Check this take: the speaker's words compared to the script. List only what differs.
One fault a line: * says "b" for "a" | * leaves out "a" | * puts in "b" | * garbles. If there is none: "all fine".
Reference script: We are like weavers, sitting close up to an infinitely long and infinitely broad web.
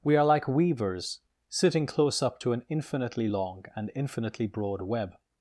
all fine